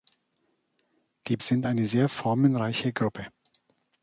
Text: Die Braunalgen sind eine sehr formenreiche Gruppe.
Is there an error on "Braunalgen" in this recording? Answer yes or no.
yes